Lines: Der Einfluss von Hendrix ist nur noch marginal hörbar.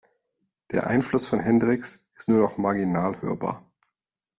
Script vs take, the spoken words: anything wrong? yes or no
no